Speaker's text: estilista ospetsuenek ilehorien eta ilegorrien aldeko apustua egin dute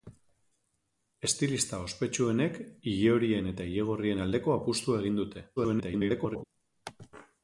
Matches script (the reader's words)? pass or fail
fail